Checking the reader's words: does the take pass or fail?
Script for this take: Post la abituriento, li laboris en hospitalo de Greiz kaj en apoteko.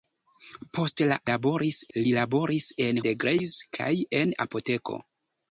fail